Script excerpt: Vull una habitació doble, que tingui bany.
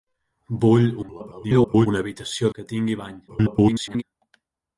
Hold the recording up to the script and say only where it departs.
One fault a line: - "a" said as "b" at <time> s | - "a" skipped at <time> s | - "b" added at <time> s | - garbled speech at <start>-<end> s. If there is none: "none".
- garbled speech at 1.0-1.9 s
- "doble" skipped at 2.5 s
- garbled speech at 3.3-4.0 s